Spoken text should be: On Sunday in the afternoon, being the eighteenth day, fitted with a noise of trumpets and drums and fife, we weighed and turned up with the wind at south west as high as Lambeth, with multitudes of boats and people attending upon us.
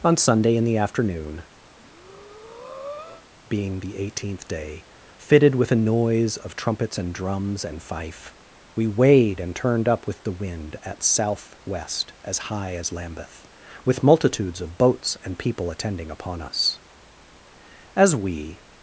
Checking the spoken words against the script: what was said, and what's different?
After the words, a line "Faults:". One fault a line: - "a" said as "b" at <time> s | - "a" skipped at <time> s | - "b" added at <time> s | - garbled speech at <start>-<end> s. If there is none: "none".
On Sunday in the afternoon, being the eighteenth day, fitted with a noise of trumpets and drums and fife, we weighed and turned up with the wind at south west as high as Lambeth, with multitudes of boats and people attending upon us. As we
Faults:
- "As we" added at 17.9 s